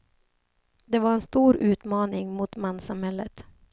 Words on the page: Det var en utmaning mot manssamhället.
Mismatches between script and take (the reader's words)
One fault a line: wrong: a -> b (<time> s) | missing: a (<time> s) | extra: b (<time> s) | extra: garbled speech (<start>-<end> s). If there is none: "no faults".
extra: stor (1.2 s)